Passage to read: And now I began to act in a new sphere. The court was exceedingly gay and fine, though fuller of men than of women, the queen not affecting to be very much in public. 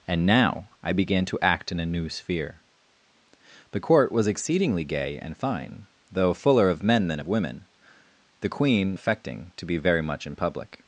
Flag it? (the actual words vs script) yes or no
yes